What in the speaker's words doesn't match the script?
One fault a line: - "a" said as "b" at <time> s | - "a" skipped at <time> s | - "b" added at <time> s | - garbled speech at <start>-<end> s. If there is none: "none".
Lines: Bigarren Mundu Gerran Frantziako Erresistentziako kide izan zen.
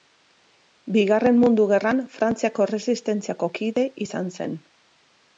none